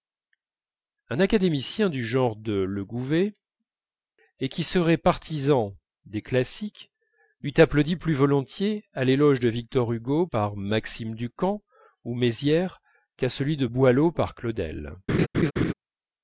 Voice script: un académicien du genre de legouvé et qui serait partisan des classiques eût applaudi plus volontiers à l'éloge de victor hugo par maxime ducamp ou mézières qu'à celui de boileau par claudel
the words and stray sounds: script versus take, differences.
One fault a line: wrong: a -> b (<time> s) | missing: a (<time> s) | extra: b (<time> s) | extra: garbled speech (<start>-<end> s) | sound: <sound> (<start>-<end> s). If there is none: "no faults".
sound: laugh (15.1-15.7 s)